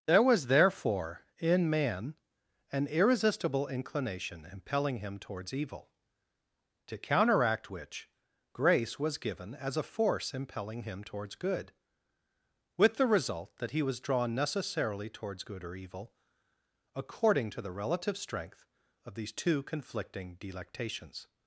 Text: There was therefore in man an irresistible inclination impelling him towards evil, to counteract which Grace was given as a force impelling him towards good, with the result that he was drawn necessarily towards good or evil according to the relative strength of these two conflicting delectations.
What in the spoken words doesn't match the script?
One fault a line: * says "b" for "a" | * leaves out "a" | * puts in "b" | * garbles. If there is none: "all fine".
all fine